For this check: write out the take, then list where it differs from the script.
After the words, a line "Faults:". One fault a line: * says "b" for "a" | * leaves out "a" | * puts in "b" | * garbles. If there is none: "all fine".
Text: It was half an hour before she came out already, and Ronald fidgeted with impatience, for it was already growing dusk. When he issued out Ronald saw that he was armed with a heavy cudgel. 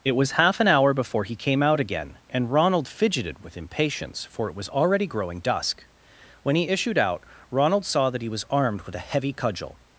It was half an hour before he came out again, and Ronald fidgeted with impatience, for it was already growing dusk. When he issued out Ronald saw that he was armed with a heavy cudgel.
Faults:
* says "he" for "she"
* says "again" for "already"